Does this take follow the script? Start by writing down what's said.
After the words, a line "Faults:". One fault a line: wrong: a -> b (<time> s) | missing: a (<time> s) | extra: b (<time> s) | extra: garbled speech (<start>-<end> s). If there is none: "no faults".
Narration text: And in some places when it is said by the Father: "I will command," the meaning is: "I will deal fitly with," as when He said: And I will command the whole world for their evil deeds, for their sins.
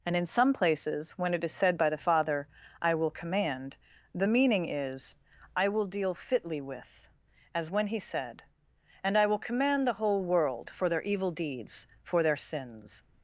And in some places when it is said by the Father: "I will command," the meaning is: "I will deal fitly with," as when He said: And I will command the whole world for their evil deeds, for their sins.
Faults:
no faults